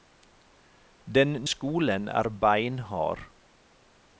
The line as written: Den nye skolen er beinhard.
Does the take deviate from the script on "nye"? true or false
true